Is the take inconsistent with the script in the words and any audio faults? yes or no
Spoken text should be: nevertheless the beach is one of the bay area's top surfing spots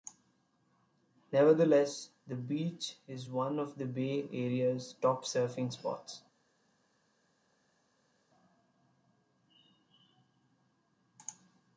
no